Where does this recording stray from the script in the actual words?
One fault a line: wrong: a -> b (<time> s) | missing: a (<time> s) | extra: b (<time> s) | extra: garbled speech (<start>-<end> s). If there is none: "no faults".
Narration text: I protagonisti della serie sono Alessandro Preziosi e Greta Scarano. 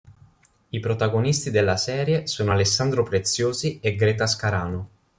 no faults